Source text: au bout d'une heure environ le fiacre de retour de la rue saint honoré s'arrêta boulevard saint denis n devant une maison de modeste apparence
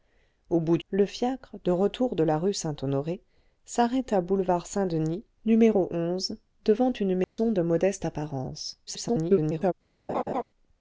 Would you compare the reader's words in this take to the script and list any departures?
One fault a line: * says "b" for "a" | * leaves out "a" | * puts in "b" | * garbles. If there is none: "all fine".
* leaves out "d'une heure environ"
* garbles